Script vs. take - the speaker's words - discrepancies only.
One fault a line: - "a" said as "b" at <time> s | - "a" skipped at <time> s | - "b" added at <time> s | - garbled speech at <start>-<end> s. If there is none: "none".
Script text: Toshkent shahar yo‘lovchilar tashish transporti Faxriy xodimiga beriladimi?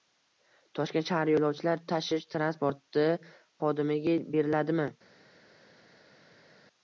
- "Faxriy" skipped at 3.1 s